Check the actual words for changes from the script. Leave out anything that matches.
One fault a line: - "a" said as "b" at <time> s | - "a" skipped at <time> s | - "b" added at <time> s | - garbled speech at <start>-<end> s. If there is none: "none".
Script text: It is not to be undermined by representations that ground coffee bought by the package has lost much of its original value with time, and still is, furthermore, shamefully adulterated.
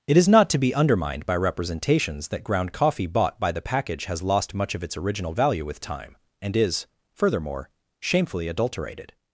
- "still" skipped at 6.6 s